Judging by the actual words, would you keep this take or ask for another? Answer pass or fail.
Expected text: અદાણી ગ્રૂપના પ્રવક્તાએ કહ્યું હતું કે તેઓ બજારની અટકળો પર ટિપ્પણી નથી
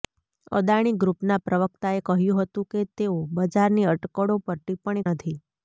pass